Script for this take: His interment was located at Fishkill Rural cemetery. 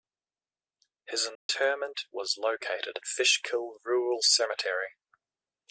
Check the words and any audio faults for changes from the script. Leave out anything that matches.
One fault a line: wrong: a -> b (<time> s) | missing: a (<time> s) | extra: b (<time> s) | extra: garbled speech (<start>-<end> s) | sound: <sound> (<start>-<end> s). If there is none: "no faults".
sound: dropout (1.4-1.5 s)
missing: at (3.0 s)